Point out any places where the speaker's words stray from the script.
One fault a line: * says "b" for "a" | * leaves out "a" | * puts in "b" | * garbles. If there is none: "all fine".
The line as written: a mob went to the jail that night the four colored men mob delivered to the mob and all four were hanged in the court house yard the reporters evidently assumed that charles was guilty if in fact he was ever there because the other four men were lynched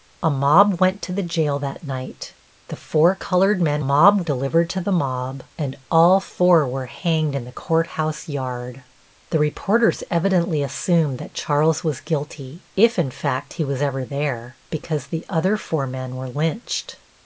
all fine